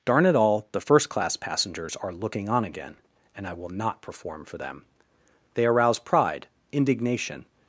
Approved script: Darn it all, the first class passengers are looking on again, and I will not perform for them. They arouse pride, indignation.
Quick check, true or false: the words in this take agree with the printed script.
true